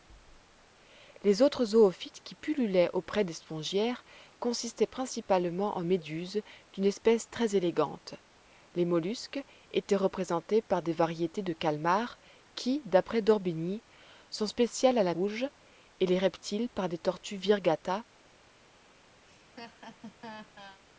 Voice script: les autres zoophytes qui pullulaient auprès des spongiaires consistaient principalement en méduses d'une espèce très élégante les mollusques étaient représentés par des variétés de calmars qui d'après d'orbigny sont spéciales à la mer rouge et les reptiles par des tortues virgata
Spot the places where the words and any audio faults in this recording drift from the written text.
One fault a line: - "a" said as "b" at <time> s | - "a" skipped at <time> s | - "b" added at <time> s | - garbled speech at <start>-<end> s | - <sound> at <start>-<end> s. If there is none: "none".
- "mer" skipped at 15.1 s
- laugh at 19.3-20.8 s